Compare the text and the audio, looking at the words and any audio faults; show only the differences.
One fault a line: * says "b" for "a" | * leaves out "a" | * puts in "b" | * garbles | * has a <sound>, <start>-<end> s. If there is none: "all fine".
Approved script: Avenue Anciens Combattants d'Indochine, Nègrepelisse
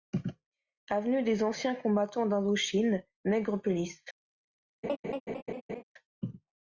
* puts in "des"
* has a laugh, 4.8-5.8 s